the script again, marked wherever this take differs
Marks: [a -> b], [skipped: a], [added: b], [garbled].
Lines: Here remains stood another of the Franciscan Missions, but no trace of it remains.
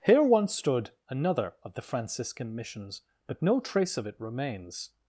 Here [remains -> once] stood another of the Franciscan Missions, but no trace of it remains.